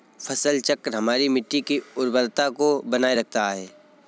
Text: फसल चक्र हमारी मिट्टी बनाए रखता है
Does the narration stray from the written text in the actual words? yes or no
yes